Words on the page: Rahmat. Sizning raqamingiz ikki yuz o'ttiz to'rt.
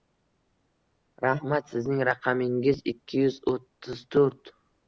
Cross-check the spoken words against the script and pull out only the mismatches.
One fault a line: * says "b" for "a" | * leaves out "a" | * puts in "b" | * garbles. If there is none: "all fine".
all fine